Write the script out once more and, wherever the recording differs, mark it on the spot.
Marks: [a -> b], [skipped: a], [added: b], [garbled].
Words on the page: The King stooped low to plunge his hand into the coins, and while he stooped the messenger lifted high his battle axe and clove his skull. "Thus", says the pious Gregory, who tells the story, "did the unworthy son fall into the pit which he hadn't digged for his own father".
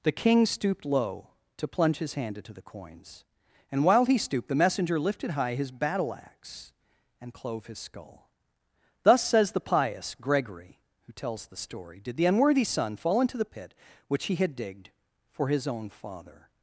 The King stooped low to plunge his hand into the coins, and while he stooped the messenger lifted high his battle axe and clove his skull. "Thus", says the pious Gregory, who tells the story, "did the unworthy son fall into the pit which he [hadn't -> had] digged for his own father".